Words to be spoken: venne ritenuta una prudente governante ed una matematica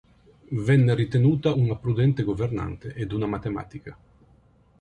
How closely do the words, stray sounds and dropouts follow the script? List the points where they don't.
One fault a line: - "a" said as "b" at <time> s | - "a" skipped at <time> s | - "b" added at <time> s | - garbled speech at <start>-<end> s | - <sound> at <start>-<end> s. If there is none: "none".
none